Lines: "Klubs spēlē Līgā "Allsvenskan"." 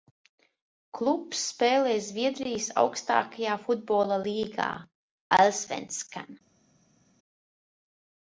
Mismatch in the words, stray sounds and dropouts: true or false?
true